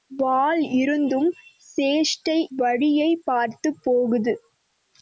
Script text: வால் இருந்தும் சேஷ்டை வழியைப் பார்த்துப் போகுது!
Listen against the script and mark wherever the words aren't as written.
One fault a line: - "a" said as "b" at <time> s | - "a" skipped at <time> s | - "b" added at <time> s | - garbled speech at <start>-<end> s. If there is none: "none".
none